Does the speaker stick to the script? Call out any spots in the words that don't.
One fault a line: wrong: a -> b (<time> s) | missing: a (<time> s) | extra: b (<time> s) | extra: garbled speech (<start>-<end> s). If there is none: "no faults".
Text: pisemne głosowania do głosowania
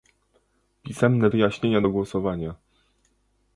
wrong: głosowania -> wyjaśnienia (1.3 s)